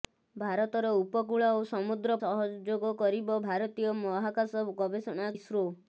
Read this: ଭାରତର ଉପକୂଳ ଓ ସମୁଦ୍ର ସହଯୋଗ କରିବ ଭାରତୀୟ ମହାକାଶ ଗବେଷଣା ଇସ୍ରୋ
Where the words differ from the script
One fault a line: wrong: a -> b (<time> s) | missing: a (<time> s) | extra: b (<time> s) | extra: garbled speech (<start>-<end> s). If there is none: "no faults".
no faults